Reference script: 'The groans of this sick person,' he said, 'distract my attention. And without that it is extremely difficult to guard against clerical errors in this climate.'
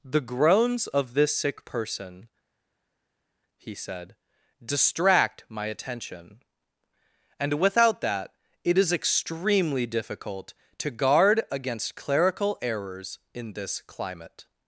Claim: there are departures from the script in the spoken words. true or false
false